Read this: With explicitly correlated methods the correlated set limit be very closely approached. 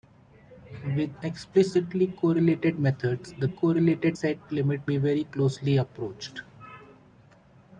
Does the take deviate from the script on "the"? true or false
false